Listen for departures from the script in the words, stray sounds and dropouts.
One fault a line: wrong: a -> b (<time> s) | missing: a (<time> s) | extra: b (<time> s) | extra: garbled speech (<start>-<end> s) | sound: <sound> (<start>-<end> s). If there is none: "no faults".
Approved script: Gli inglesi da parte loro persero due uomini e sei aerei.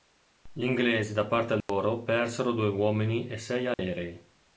sound: dropout (1.6-1.7 s)
sound: dropout (3.7-3.8 s)